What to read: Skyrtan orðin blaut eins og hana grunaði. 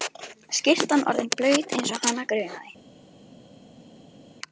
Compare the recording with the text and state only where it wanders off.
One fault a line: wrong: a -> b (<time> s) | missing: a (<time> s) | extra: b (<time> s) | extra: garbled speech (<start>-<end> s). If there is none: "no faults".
no faults